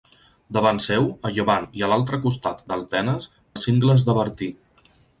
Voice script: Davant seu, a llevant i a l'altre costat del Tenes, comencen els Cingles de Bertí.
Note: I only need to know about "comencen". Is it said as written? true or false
false